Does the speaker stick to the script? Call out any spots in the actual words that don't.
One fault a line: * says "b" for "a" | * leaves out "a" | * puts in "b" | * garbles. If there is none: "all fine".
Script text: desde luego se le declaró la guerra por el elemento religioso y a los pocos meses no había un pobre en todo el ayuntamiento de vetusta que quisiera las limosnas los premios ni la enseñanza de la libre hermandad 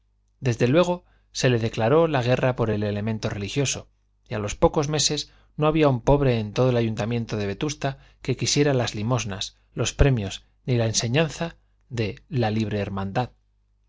all fine